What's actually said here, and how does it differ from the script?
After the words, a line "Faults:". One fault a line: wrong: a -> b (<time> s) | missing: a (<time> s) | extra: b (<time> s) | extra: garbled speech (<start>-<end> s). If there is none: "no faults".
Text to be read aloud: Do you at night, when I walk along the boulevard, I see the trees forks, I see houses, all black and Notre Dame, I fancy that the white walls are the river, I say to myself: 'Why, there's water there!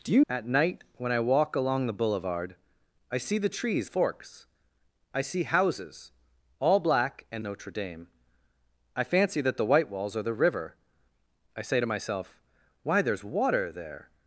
Do you at night, when I walk along the boulevard, I see the trees forks, I see houses, all black and Notre Dame, I fancy that the white walls are the river, I say to myself: 'Why, there's water there!
Faults:
no faults